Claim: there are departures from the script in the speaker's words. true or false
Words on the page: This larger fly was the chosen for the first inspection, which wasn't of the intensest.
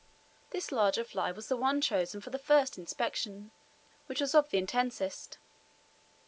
true